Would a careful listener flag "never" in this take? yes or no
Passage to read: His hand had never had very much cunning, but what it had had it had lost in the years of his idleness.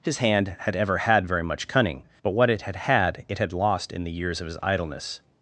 yes